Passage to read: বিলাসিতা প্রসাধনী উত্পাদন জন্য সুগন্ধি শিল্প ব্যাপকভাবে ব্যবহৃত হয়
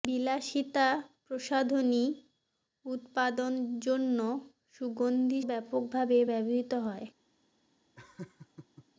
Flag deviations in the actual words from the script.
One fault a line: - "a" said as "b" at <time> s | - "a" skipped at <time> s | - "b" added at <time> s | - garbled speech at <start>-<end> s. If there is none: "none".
- "শিল্প" skipped at 5.4 s